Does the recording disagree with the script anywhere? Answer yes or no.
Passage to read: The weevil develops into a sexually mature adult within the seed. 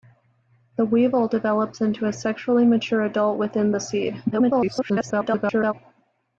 yes